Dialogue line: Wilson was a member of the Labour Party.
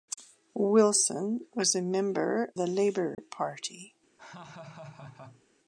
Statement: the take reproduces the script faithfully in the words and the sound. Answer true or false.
false